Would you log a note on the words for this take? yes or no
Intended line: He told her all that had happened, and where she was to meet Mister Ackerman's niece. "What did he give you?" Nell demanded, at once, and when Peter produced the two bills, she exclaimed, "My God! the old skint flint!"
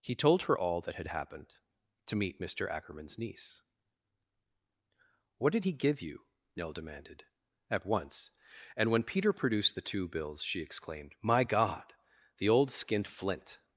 yes